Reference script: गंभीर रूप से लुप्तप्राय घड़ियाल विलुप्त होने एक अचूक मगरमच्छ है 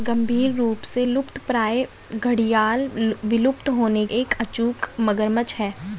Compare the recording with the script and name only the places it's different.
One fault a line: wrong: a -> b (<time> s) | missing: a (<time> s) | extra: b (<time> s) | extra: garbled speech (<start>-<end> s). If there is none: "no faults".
no faults